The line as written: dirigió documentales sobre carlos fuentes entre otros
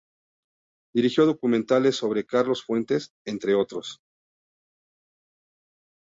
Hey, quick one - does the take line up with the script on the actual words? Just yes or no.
yes